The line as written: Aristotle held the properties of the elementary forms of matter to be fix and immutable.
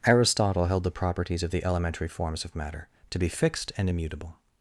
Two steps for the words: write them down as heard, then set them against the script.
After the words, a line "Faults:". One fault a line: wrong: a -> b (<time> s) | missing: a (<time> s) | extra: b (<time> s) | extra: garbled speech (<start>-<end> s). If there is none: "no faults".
Aristotle held the properties of the elementary forms of matter to be fixed and immutable.
Faults:
wrong: fix -> fixed (3.3 s)